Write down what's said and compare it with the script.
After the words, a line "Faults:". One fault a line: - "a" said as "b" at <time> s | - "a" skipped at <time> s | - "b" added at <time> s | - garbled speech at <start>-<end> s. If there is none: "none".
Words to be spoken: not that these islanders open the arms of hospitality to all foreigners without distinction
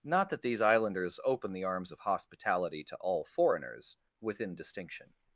not that these islanders open the arms of hospitality to all foreigners within distinction
Faults:
- "without" said as "within" at 4.2 s